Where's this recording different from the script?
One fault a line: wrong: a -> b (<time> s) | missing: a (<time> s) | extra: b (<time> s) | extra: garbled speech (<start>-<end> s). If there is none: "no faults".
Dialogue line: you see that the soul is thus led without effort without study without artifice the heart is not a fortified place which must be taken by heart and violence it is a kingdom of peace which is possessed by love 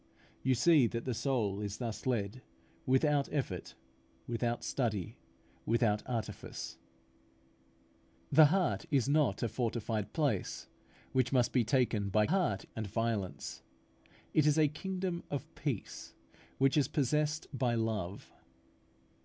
no faults